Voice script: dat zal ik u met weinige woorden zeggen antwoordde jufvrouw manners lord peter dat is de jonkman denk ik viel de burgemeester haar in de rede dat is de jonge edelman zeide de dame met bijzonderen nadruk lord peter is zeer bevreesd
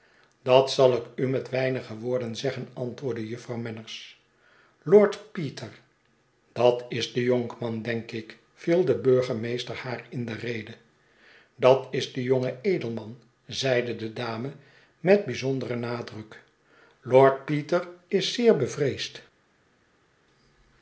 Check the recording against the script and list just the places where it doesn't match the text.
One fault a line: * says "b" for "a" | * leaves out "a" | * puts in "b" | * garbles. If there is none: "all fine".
all fine